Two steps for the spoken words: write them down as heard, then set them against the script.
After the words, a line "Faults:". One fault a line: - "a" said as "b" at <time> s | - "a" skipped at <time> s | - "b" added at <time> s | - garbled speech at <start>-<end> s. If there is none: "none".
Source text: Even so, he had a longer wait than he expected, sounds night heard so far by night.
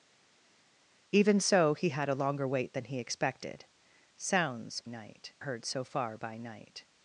Even so, he had a longer wait than he expected, sounds night heard so far by night.
Faults:
none